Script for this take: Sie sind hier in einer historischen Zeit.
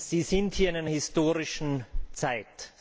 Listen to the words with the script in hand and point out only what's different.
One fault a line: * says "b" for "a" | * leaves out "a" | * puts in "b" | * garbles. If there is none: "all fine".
all fine